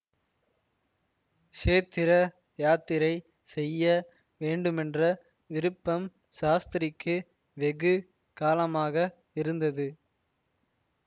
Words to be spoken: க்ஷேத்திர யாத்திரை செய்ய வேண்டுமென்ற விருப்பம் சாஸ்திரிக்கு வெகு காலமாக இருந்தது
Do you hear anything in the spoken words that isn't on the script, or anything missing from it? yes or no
no